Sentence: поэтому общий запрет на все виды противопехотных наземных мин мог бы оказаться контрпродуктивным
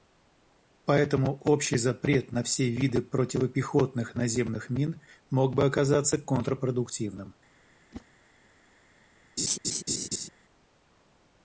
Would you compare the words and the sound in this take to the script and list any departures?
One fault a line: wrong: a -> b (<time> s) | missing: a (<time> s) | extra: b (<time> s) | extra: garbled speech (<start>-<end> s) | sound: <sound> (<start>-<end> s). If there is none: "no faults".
sound: whoosh (7.9-8.1 s)
sound: laugh (9.4-10.3 s)